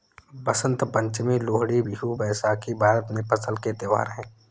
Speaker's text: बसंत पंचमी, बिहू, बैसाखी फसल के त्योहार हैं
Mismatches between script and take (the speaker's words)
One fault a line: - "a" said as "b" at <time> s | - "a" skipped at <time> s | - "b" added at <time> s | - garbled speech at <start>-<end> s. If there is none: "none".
- "लोहड़ी" added at 1.4 s
- "भारत में" added at 2.8 s